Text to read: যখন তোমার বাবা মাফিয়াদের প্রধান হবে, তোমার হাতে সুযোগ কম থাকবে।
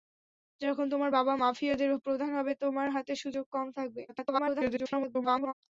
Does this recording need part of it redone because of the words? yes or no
yes